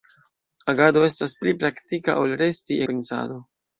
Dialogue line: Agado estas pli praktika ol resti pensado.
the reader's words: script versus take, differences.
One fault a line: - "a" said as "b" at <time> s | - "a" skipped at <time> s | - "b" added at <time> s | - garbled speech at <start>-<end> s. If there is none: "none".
none